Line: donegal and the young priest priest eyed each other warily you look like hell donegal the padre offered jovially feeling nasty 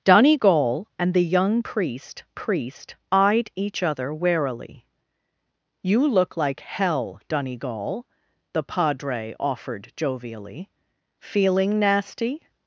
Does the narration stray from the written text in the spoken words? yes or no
no